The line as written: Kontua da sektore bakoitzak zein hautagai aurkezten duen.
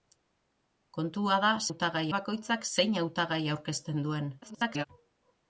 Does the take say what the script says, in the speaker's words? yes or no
no